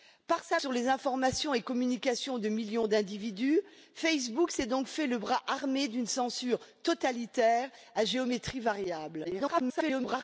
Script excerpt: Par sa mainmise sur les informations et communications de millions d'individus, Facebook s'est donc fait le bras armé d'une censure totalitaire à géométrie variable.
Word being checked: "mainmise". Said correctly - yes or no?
no